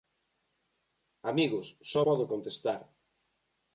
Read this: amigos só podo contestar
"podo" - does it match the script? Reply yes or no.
yes